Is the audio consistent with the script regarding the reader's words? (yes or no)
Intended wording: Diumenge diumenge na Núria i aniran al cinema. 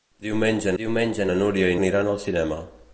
yes